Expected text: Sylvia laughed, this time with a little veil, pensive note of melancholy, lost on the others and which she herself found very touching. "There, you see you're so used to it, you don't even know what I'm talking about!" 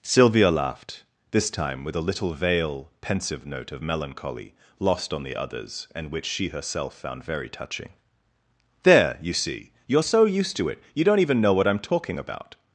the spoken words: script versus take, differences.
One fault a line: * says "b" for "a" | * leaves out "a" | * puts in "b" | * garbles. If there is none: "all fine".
all fine